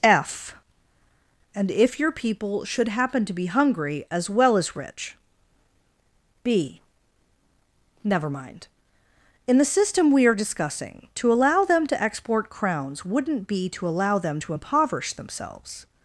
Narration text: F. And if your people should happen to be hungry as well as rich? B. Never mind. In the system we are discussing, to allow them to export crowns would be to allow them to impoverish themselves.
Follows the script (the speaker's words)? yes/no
no